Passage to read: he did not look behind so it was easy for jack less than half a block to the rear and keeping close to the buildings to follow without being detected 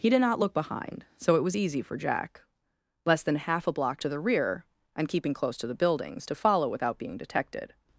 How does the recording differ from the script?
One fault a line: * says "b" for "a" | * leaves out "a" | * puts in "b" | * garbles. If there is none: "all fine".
all fine